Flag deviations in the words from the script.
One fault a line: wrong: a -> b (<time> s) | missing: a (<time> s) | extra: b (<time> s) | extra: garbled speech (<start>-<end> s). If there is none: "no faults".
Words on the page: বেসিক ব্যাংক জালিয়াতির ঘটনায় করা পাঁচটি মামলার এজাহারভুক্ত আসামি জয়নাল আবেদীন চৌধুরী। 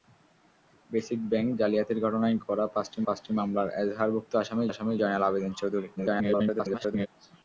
extra: পাঁচটি (3.1 s)
extra: আসামি (4.7 s)
extra: garbled speech (6.0-7.1 s)